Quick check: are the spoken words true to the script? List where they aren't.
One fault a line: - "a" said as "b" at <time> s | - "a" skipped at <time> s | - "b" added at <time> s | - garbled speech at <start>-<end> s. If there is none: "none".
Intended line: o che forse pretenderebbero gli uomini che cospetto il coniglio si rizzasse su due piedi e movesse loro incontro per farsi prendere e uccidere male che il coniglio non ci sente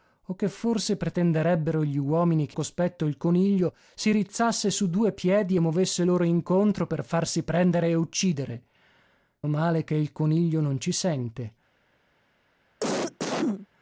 none